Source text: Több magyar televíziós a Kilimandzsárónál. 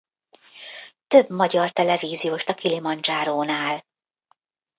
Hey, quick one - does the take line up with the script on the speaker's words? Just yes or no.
yes